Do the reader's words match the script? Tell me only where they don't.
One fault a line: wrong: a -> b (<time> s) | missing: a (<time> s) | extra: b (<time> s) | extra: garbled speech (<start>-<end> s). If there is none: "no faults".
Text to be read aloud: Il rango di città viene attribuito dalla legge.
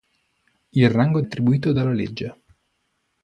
missing: di città viene (1.2 s)